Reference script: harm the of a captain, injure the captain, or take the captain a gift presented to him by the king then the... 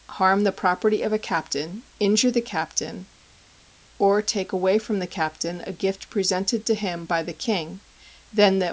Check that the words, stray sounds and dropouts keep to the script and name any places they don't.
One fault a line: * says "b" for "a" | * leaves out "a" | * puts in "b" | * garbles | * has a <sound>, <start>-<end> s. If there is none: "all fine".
* puts in "property"
* puts in "away from"